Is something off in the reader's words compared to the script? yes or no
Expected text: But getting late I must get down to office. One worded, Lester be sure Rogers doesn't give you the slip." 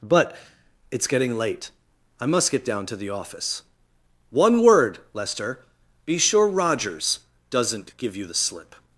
yes